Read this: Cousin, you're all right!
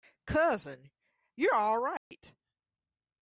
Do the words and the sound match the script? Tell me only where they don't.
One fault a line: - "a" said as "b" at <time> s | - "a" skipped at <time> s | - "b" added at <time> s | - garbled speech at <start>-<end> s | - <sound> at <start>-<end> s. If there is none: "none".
- dropout at 2.0-2.1 s